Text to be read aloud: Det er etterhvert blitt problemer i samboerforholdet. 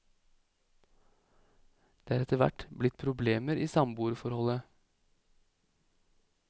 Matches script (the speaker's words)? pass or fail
pass